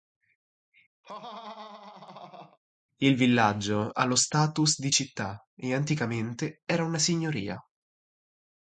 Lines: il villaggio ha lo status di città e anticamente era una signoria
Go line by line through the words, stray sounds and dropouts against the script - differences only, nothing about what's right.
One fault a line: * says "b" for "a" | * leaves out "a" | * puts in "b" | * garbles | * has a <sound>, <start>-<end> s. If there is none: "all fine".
* has a laugh, 1.0-2.6 s